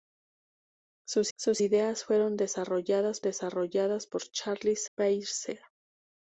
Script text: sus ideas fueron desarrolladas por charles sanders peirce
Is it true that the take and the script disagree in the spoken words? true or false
true